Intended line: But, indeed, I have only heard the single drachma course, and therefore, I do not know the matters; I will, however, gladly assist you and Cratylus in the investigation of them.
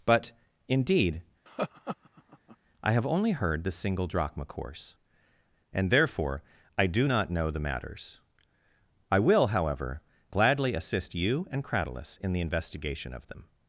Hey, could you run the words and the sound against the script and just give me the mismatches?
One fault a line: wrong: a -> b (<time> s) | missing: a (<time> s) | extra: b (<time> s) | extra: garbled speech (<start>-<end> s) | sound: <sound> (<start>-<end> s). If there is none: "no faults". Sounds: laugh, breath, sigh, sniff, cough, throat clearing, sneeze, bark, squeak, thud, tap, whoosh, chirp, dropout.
sound: laugh (1.5-2.6 s)